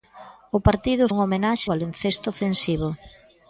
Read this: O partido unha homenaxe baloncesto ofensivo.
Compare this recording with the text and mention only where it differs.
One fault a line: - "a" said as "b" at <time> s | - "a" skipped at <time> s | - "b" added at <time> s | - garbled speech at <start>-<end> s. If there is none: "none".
none